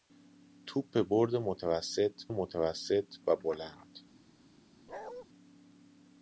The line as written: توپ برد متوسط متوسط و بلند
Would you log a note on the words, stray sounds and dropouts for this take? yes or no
yes